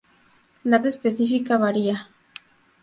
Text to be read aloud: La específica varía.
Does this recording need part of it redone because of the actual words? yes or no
no